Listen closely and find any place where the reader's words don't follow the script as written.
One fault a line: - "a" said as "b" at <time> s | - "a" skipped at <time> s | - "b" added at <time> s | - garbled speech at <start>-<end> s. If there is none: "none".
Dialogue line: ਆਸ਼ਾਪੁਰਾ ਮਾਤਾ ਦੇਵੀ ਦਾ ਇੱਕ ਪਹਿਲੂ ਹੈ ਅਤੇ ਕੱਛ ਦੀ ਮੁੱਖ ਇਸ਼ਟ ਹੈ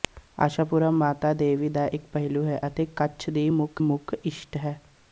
- "ਮੁੱਖ" added at 3.8 s